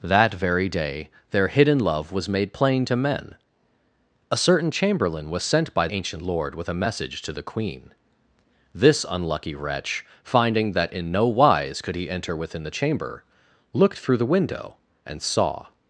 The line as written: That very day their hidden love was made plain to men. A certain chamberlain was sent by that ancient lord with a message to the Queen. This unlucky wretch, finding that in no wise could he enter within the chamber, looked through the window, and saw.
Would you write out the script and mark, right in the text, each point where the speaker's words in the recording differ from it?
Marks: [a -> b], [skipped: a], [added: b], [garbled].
That very day their hidden love was made plain to men. A certain chamberlain was sent by [skipped: that] ancient lord with a message to the Queen. This unlucky wretch, finding that in no wise could he enter within the chamber, looked through the window, and saw.